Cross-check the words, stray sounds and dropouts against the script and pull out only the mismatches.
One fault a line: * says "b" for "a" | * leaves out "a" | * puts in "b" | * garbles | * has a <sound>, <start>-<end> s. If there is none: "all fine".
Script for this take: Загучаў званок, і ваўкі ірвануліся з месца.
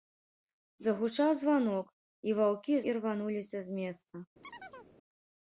* has a chirp, 4.4-4.9 s